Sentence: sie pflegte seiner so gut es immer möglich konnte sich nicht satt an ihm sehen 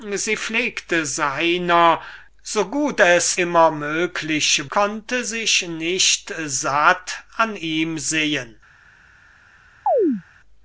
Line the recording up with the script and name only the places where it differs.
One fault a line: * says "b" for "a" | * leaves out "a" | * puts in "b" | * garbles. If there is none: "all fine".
all fine